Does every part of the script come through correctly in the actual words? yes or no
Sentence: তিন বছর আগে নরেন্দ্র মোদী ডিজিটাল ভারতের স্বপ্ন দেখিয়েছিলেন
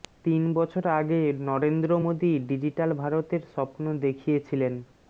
yes